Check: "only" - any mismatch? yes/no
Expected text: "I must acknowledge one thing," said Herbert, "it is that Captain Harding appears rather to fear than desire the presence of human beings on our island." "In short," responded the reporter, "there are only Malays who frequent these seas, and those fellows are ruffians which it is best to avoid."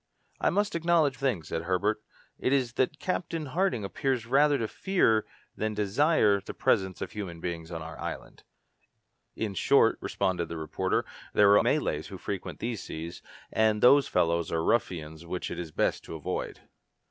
yes